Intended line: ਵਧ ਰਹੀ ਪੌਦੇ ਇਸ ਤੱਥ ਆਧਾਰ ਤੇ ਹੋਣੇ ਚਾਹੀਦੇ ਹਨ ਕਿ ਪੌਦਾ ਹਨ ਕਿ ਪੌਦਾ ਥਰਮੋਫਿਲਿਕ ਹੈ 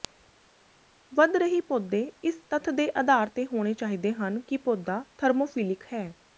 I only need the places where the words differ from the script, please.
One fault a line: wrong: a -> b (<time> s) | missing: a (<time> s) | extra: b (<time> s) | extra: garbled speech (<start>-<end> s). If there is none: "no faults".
extra: ਦੇ (2.7 s)
missing: ਹਨ ਕਿ ਪੌਦਾ (5.0 s)